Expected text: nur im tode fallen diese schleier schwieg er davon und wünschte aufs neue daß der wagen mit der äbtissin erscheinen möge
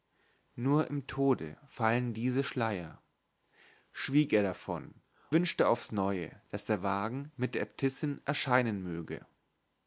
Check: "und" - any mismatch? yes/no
yes